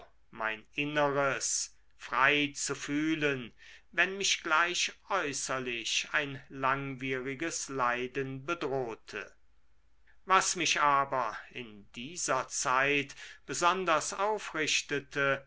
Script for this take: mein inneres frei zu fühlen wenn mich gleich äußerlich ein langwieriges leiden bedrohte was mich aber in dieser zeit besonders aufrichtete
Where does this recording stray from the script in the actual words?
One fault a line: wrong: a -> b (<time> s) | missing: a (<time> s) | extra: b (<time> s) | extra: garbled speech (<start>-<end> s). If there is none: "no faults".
no faults